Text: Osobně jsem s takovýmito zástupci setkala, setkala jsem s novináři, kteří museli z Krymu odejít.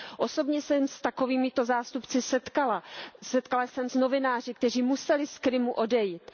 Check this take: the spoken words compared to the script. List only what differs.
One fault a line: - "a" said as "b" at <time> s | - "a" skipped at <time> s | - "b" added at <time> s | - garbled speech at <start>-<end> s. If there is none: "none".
none